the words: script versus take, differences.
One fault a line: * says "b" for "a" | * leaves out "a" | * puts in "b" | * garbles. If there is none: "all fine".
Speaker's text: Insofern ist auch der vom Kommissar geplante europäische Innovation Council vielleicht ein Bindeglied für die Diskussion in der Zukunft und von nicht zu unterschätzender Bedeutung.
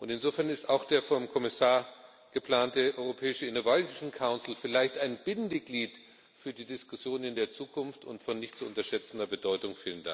all fine